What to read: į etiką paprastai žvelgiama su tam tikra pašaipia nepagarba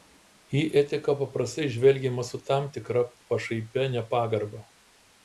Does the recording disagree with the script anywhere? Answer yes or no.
no